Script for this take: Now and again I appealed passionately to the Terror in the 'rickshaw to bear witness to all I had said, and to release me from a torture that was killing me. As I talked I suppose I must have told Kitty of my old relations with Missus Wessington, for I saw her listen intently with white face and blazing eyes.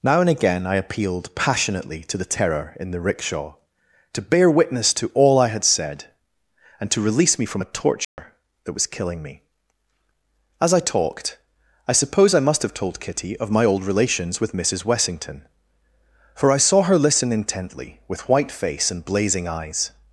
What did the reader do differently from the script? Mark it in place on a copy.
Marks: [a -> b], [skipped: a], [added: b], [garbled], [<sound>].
Now and again I appealed passionately to the Terror in the 'rickshaw to bear witness to all I had said, and to release me from a torture [dropout] that was killing me. As I talked I suppose I must have told Kitty of my old relations with Missus Wessington, for I saw her listen intently with white face and blazing eyes.